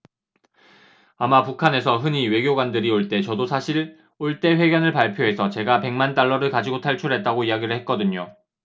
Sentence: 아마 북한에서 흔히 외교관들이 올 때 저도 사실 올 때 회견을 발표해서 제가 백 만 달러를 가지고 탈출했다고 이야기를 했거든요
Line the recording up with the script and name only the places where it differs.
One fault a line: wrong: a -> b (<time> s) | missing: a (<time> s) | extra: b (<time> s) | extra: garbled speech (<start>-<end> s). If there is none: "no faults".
no faults